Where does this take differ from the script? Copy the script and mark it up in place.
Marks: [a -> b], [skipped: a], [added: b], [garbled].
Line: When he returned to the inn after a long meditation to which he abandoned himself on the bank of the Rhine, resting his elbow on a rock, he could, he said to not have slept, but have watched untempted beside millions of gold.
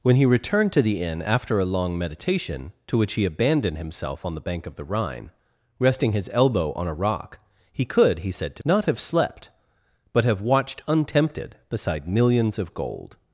When he returned to the inn after a long meditation to which he abandoned himself on the bank of the Rhine, resting his elbow on a rock, he could, he said to not have slept, but have watched untempted beside millions of gold.